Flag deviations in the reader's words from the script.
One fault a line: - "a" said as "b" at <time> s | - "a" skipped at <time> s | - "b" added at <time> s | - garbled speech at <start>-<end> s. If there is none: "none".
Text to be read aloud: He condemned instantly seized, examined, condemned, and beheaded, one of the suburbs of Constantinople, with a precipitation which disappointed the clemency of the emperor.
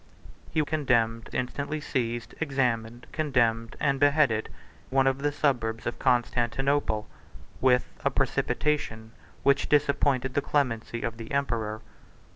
none